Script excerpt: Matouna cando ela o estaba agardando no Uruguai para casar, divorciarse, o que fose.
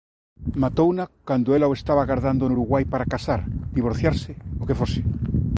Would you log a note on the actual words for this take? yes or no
no